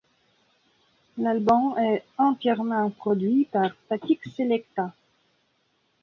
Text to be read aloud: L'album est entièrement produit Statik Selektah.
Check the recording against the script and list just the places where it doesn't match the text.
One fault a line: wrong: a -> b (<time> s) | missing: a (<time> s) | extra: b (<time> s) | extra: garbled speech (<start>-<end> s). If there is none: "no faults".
extra: par (3.5 s)